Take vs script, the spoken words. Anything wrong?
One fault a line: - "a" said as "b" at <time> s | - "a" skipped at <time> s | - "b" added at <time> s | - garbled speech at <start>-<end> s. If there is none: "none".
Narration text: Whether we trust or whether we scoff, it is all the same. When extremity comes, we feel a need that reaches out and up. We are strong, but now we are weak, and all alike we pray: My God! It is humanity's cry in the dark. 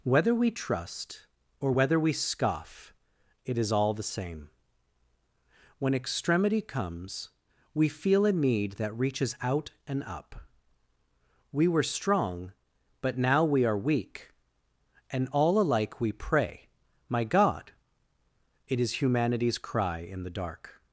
- "are" said as "were" at 11.7 s